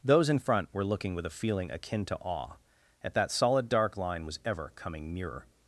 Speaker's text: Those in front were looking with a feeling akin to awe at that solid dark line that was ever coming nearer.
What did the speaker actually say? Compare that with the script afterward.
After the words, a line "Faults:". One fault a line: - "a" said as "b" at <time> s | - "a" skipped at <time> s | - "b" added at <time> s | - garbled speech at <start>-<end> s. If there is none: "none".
Those in front were looking with a feeling akin to awe at that solid dark line was ever coming nearer.
Faults:
- "that" skipped at 4.2 s